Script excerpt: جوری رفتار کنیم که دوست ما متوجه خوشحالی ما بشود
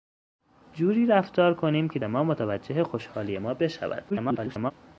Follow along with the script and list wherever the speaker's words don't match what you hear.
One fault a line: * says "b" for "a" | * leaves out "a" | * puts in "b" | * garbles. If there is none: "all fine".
* leaves out "دوست"
* garbles